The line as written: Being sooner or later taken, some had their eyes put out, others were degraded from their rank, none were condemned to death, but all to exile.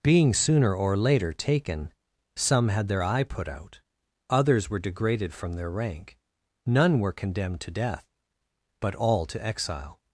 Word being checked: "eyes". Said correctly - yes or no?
no